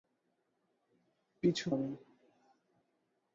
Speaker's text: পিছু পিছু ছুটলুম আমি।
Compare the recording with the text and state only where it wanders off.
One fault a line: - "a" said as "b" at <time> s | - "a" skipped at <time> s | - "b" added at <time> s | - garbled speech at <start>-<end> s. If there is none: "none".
- "পিছু ছুটলুম" skipped at 1.6 s